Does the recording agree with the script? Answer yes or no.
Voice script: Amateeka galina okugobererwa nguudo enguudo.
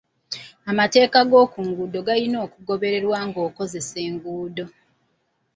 no